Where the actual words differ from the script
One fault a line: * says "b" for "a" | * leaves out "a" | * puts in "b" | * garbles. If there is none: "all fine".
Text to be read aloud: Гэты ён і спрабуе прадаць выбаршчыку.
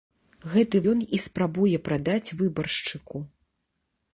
all fine